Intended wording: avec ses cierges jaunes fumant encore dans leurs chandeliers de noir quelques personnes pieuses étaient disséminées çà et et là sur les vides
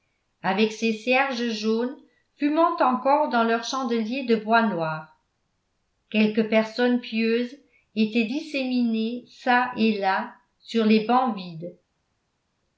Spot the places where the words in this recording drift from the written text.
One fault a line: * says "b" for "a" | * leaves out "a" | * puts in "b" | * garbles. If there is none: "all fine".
* puts in "bois"
* leaves out "et"
* puts in "bancs"